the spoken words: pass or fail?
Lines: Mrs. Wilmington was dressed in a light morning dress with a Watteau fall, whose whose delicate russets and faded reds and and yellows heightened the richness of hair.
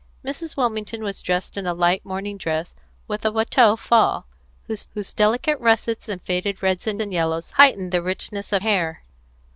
pass